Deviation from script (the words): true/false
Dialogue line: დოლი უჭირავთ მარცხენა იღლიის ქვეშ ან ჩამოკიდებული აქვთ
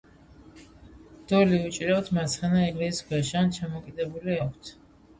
false